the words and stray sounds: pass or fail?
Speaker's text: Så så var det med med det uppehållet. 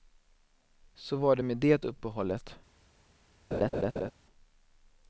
fail